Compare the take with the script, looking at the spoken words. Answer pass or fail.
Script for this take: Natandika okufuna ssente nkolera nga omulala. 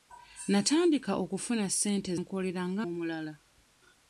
pass